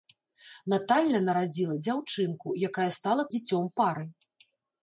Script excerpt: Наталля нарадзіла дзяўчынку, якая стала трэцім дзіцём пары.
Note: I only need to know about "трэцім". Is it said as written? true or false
false